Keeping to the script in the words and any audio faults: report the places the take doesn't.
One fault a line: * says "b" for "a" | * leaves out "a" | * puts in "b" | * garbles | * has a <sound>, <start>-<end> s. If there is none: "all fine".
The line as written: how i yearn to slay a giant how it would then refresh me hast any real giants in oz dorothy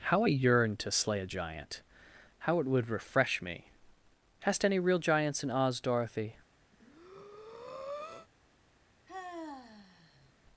* leaves out "then"
* has a breath, 6.7-8.3 s
* has a sigh, 9.1-10.3 s